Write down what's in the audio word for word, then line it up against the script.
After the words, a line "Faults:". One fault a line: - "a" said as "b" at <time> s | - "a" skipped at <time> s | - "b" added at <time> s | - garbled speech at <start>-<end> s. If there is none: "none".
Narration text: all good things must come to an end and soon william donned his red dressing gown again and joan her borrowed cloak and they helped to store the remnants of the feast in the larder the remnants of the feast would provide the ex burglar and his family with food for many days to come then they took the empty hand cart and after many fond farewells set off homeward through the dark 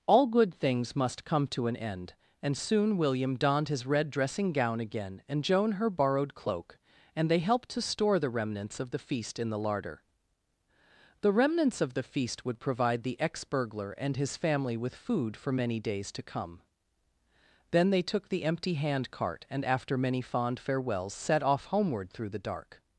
all good things must come to an end and soon william donned his red dressing gown again and joan her borrowed cloak and they helped to store the remnants of the feast in the larder the remnants of the feast would provide the ex burglar and his family with food for many days to come then they took the empty hand cart and after many fond farewells set off homeward through the dark
Faults:
none